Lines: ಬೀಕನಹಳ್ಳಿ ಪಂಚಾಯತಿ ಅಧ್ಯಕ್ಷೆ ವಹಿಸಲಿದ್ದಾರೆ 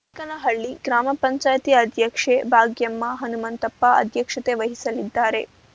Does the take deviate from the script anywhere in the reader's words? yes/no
yes